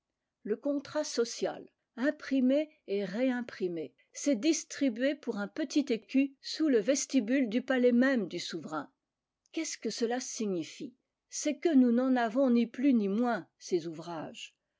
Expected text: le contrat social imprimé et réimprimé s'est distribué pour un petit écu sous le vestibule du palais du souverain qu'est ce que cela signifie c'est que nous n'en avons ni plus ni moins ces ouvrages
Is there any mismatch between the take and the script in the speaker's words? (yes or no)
yes